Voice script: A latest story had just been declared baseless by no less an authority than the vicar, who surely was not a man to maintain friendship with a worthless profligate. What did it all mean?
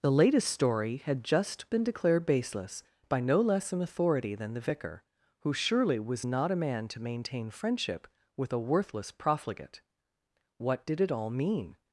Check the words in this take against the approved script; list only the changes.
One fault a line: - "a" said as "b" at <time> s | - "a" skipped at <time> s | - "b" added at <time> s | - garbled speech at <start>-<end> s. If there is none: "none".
- "A" said as "The" at 0.0 s